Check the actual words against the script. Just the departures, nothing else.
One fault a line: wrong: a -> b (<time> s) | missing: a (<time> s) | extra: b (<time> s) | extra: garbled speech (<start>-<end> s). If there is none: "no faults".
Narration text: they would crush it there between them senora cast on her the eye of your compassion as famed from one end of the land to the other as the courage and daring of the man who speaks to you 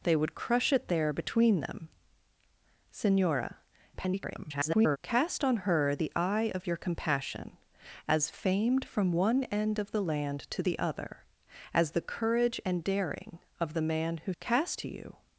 extra: garbled speech (3.9-5.0 s)
wrong: speaks -> cast (14.4 s)